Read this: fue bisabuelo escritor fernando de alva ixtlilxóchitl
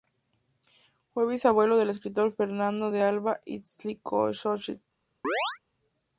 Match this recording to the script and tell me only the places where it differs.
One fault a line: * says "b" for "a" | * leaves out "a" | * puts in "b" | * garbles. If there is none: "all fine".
* puts in "del"